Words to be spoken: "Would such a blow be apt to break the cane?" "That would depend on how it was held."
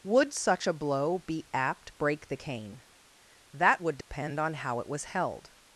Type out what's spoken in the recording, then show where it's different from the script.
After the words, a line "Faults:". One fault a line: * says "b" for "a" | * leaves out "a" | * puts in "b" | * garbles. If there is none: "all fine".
"Would such a blow be apt break the cane?" "That would depend on how it was held."
Faults:
* leaves out "to"